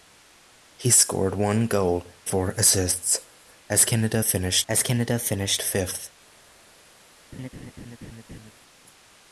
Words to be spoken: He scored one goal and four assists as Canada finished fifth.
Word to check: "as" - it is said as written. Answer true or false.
true